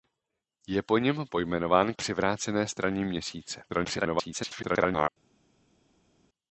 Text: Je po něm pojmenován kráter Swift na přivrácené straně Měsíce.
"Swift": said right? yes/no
no